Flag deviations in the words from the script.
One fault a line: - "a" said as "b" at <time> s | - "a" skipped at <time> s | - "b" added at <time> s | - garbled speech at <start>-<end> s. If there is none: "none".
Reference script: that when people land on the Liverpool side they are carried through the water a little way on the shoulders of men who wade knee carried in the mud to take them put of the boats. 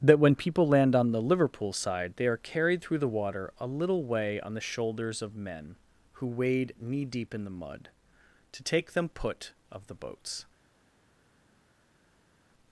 - "carried" said as "deep" at 7.0 s